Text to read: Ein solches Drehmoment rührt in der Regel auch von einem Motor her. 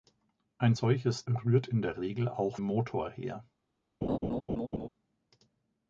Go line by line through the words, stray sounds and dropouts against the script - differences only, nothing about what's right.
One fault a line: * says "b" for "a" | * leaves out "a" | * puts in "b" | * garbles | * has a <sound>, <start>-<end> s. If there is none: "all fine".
* leaves out "Drehmoment"
* leaves out "von einem"
* has a laugh, 4.0-4.9 s